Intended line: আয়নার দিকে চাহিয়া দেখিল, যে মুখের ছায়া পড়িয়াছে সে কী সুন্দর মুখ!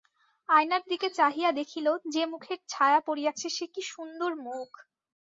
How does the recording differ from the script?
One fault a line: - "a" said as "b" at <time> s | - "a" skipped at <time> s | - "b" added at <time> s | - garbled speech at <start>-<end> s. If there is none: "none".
none